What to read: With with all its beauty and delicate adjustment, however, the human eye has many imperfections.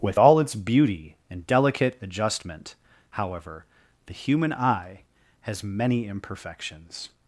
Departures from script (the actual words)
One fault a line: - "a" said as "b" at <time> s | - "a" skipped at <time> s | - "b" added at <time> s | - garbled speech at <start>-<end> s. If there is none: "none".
- "with" skipped at 0.2 s